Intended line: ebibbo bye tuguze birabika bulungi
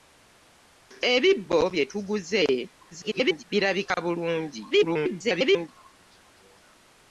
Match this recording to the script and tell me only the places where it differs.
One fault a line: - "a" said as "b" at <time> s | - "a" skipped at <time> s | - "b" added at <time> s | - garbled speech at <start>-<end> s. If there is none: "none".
- garbled speech at 2.9-3.4 s
- garbled speech at 4.7-5.7 s